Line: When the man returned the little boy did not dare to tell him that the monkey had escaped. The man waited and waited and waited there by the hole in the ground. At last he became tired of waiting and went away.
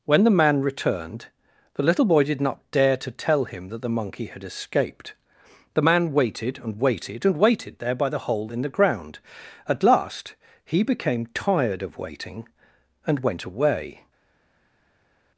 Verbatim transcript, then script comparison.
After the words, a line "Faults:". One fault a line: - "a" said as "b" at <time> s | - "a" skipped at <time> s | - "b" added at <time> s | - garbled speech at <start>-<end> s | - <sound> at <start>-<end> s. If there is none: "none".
When the man returned the little boy did not dare to tell him that the monkey had escaped. The man waited and waited and waited there by the hole in the ground. At last he became tired of waiting and went away.
Faults:
none